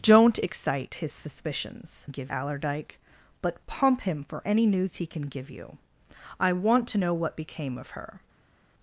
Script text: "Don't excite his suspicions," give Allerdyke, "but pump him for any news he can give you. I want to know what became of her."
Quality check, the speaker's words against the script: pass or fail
pass